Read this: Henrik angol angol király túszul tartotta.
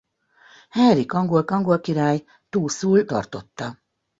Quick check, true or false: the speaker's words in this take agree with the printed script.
true